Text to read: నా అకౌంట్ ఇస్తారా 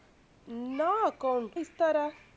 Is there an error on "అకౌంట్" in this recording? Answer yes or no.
no